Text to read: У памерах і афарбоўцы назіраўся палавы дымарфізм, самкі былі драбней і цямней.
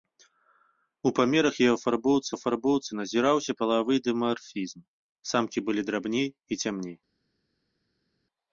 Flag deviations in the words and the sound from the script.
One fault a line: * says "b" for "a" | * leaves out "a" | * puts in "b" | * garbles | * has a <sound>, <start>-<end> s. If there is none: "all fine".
* puts in "афарбоўцы"